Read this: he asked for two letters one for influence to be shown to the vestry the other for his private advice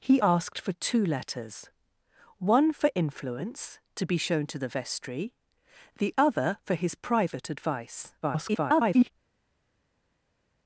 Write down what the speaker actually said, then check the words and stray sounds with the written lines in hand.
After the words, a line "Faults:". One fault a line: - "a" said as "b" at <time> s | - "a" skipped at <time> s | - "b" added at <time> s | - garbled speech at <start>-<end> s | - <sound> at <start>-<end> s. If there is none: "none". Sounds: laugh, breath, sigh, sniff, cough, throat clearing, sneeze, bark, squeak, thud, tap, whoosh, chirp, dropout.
he asked for two letters one for influence to be shown to the vestry the other for his private advice [garbled]
Faults:
- garbled speech at 8.2-9.1 s